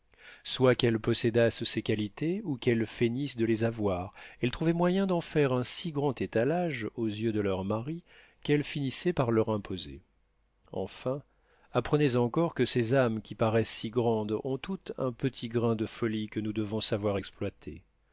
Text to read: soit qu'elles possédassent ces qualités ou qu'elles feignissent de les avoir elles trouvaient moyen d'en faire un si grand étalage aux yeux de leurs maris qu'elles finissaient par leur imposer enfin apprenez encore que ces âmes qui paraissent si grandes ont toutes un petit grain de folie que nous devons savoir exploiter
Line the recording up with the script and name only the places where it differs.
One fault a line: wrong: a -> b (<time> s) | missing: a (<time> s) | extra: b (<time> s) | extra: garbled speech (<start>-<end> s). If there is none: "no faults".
no faults